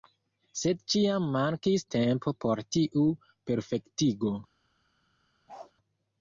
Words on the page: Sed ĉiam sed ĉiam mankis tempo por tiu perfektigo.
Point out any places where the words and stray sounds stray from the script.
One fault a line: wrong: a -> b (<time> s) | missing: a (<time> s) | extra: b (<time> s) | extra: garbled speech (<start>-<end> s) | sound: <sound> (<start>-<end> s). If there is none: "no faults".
missing: sed ĉiam (1.3 s)
sound: bark (5.5-5.7 s)